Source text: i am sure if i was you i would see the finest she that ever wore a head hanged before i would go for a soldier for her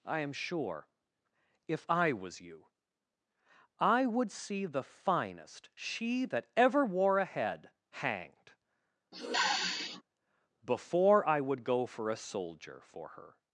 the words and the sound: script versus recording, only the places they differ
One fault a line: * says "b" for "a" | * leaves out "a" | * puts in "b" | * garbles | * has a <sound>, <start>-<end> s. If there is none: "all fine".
* has a sniff, 9.1-10.0 s